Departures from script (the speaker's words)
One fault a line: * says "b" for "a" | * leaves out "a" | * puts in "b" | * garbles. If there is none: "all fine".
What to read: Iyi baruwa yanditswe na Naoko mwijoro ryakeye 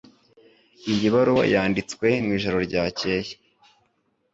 * leaves out "na Naoko"